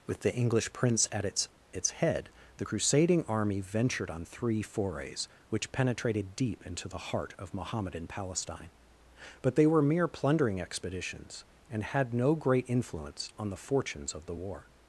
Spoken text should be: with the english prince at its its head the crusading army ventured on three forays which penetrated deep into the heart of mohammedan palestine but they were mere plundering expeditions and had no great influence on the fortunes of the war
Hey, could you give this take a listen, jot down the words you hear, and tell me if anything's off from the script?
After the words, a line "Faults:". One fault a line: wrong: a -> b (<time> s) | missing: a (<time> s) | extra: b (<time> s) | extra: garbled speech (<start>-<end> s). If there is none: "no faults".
with the english prince at its its head the crusading army ventured on three forays which penetrated deep into the heart of mohammedan palestine but they were mere plundering expeditions and had no great influence on the fortunes of the war
Faults:
no faults